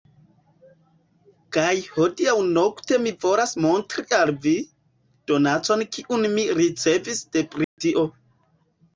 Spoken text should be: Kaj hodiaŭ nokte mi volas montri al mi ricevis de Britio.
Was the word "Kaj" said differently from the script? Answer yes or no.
no